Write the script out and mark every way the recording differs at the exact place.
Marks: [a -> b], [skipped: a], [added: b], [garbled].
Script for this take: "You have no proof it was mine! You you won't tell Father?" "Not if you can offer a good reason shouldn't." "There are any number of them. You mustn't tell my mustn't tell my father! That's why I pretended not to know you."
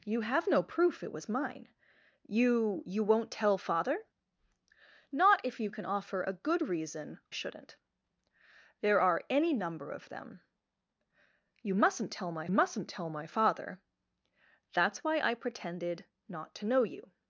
"You have no proof it was mine! You you won't tell Father?" "Not if you can offer a good reason shouldn't." "There are any number of them. You mustn't tell my mustn't tell my father! That's why I pretended not to know you."